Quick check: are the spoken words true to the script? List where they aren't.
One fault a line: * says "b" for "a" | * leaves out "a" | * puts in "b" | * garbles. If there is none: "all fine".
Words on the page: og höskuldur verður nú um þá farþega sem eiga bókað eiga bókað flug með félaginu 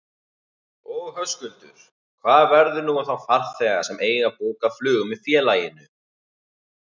* puts in "hvað"
* leaves out "eiga bókað"